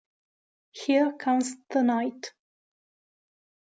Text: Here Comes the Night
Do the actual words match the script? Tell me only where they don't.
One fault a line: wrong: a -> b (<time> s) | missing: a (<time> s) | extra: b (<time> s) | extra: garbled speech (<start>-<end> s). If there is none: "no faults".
no faults